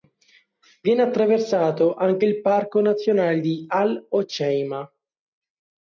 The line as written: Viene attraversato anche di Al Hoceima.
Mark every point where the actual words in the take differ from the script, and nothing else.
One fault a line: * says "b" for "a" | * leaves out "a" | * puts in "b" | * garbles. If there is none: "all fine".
* puts in "il parco nazionale"